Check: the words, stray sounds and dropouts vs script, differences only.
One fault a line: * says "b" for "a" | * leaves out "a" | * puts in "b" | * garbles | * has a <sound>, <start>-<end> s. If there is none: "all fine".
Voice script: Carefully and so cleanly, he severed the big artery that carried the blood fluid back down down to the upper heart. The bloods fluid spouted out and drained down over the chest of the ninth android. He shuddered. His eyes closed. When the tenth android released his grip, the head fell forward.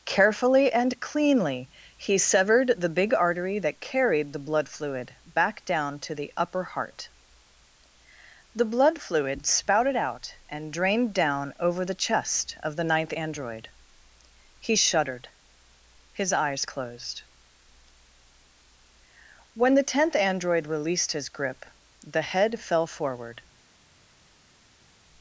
* leaves out "so"
* leaves out "down"
* says "blood" for "bloods"